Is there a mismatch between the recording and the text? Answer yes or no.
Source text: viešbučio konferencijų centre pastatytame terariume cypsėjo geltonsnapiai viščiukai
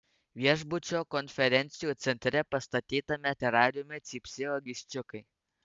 yes